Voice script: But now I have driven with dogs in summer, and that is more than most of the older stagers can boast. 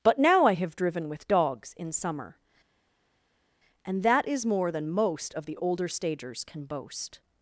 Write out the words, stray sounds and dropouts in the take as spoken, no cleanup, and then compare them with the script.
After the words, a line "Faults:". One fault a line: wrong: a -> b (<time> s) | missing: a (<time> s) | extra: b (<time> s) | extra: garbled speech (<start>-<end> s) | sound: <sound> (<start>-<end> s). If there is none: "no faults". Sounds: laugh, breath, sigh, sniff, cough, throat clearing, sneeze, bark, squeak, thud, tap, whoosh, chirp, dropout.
But now I have driven with dogs in summer, and that is more than most of the older stagers can boast.
Faults:
no faults